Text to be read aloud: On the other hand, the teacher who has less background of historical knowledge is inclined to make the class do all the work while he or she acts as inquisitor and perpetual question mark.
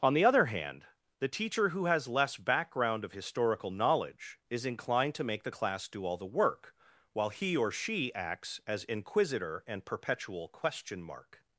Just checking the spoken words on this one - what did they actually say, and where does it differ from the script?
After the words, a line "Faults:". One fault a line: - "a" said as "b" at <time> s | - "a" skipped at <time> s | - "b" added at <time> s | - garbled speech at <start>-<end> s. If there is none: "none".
On the other hand, the teacher who has less background of historical knowledge is inclined to make the class do all the work while he or she acts as inquisitor and perpetual question mark.
Faults:
none